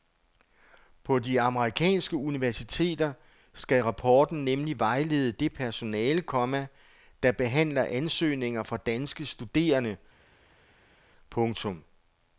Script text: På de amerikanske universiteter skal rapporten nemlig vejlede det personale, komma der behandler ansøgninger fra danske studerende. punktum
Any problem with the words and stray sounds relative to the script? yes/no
no